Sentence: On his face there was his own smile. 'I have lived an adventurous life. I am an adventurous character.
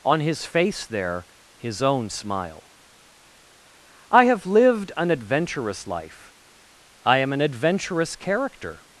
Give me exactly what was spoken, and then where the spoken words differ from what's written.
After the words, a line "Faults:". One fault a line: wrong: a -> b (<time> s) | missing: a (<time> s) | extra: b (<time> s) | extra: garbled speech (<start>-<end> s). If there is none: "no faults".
On his face there his own smile. 'I have lived an adventurous life. I am an adventurous character.
Faults:
missing: was (1.2 s)